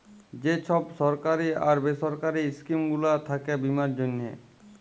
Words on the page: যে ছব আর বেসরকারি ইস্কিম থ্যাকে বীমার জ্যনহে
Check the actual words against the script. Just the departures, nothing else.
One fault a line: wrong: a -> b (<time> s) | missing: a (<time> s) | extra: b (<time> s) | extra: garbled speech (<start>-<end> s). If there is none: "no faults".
extra: সরকারি (1.0 s)
extra: গুলা (2.9 s)